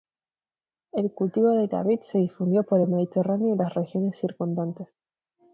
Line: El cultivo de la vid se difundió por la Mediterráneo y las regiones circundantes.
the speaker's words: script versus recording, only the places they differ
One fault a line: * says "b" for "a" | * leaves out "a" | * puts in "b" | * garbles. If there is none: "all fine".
* says "el" for "la"